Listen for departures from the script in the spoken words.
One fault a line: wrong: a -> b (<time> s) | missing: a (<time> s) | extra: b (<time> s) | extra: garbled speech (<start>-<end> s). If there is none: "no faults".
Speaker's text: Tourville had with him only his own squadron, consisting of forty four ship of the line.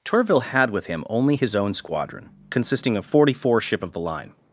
no faults